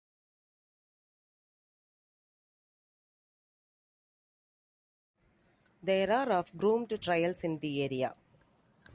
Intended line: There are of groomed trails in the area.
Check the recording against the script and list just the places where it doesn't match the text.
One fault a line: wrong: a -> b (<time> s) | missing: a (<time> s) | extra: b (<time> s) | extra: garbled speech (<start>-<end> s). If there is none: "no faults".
no faults